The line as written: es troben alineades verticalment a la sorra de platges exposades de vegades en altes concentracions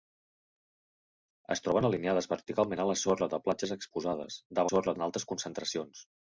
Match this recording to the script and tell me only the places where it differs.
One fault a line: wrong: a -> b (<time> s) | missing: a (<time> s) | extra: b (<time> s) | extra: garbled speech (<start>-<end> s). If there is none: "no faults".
wrong: vegades -> sorra (4.7 s)